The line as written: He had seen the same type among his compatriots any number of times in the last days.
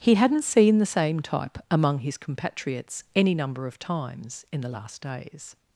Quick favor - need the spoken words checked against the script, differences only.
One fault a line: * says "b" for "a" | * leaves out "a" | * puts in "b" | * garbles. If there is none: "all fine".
* says "hadn't" for "had"